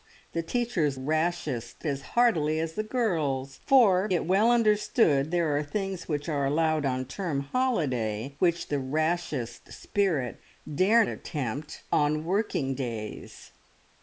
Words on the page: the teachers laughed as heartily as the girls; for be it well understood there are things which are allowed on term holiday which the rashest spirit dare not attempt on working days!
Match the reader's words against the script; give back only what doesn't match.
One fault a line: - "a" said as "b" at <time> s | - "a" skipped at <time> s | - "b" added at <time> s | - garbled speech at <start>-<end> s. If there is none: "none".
- "laughed" said as "rashest" at 0.9 s
- "be" skipped at 4.1 s
- "not" skipped at 11.0 s